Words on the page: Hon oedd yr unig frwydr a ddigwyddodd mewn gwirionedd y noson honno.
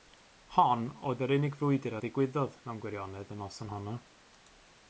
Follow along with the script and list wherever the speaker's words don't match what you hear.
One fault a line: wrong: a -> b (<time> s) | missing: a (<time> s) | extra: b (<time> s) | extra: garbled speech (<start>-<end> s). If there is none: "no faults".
no faults